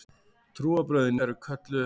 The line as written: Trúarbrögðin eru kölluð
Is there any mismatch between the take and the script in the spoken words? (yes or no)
no